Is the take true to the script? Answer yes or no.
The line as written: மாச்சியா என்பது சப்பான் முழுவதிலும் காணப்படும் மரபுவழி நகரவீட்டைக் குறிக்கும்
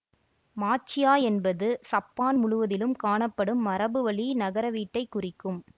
yes